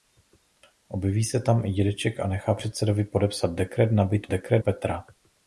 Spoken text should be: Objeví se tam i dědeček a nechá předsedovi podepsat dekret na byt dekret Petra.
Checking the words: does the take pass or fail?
pass